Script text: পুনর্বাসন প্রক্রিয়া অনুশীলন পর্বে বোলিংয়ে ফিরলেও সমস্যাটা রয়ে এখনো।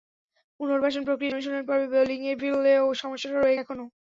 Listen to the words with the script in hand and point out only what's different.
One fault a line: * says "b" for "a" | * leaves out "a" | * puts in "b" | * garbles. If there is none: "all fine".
all fine